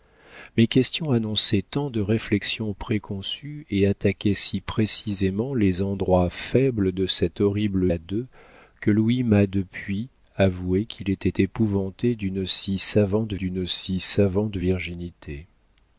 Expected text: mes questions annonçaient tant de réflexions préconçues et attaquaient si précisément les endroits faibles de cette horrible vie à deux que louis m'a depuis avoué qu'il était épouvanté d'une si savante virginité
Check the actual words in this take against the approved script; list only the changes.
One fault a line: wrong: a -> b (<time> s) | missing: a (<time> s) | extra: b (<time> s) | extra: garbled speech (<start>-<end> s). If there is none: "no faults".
missing: vie (7.9 s)
extra: d'une si savante (13.3 s)